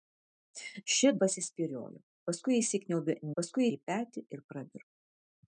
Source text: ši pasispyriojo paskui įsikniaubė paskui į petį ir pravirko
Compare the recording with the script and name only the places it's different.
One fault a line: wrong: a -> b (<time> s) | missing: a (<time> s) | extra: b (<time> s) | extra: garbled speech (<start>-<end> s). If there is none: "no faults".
no faults